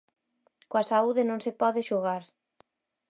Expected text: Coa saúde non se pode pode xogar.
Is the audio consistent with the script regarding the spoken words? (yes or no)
no